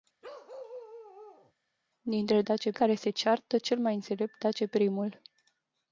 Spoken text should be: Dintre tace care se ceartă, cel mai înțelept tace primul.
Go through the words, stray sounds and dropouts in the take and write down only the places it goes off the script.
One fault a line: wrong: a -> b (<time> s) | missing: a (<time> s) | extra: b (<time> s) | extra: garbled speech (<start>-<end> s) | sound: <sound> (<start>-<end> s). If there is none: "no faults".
sound: bark (0.2-1.5 s)